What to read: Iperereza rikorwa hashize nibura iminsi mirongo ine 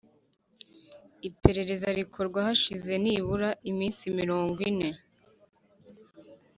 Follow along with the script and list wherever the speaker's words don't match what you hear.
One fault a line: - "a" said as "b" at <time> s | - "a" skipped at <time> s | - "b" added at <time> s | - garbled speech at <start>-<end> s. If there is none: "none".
none